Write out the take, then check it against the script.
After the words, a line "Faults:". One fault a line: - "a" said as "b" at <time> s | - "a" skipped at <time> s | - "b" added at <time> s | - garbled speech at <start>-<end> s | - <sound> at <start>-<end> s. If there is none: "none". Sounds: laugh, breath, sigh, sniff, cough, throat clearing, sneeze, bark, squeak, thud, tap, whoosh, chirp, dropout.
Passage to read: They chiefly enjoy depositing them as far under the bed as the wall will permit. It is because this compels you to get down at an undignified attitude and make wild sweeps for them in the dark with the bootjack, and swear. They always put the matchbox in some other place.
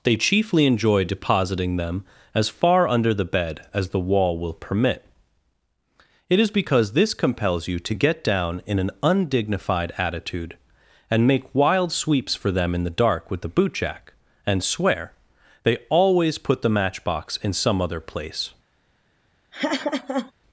They chiefly enjoy depositing them as far under the bed as the wall will permit. It is because this compels you to get down in an undignified attitude and make wild sweeps for them in the dark with the bootjack, and swear. They always put the matchbox in some other place.
Faults:
- "at" said as "in" at 8.7 s
- laugh at 19.5-20.3 s